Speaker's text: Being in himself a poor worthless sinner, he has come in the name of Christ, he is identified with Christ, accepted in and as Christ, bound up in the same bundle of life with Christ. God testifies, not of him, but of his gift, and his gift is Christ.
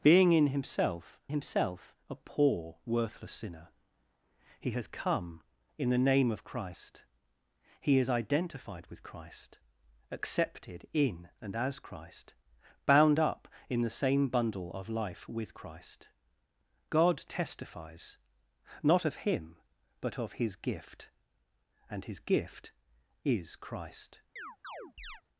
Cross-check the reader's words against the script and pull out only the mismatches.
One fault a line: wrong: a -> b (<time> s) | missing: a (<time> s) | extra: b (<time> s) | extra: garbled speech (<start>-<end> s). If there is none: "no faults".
extra: himself (1.3 s)